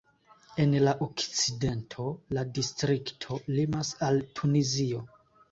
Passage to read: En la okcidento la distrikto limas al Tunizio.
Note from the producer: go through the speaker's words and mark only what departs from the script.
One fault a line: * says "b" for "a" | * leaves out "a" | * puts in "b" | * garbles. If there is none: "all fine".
all fine